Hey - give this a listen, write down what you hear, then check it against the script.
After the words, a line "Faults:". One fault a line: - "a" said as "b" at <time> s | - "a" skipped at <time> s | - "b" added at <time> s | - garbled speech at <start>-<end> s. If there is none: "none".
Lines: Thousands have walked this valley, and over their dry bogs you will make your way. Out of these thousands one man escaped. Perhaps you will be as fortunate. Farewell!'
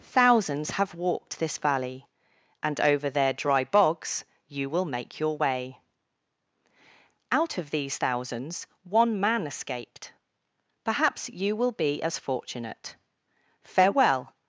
Thousands have walked this valley, and over their dry bogs you will make your way. Out of these thousands one man escaped. Perhaps you will be as fortunate. Farewell!'
Faults:
none